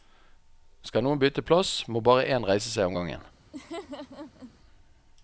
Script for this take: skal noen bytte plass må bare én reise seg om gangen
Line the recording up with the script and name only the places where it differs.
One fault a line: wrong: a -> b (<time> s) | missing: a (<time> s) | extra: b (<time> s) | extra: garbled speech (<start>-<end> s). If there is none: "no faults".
no faults